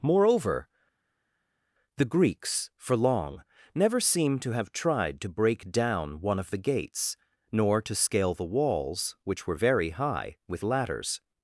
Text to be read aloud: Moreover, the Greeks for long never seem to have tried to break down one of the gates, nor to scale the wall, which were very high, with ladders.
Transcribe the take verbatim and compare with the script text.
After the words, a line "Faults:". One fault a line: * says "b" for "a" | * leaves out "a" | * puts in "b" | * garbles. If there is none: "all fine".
Moreover, the Greeks for long never seem to have tried to break down one of the gates, nor to scale the walls, which were very high, with ladders.
Faults:
* says "walls" for "wall"